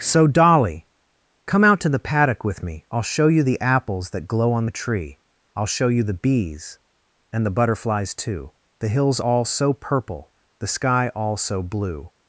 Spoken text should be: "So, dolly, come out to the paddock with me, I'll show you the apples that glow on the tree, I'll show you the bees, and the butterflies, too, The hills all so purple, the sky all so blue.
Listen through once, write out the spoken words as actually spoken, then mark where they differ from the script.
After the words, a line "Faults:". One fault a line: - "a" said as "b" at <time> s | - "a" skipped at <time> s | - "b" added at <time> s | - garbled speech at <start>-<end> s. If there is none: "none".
"So, dolly, come out to the paddock with me, I'll show you the apples that glow on the tree, I'll show you the bees, and the butterflies, too, The hills all so purple, the sky all so blue.
Faults:
none